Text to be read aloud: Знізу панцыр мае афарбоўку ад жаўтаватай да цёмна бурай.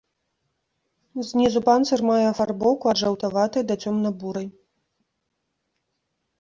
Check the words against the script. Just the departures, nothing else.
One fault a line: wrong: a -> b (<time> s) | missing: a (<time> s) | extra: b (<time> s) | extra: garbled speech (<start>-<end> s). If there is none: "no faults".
no faults